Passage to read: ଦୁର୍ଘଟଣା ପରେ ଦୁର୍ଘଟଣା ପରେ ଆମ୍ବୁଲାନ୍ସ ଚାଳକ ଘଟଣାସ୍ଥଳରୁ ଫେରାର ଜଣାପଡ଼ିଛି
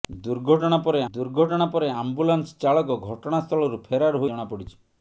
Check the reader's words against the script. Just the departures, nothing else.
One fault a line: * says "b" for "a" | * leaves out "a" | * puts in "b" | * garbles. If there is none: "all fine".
all fine